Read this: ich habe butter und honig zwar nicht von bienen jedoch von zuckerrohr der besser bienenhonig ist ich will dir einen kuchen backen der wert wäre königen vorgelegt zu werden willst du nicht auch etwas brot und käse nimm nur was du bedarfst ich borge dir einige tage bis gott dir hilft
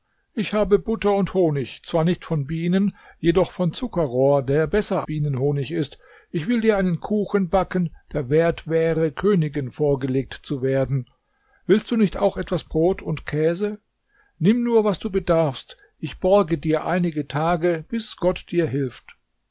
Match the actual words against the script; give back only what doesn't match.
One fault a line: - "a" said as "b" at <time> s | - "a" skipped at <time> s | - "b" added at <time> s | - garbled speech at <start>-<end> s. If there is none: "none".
none